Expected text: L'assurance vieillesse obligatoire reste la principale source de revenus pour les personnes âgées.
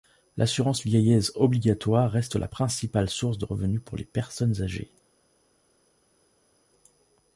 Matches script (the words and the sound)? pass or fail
pass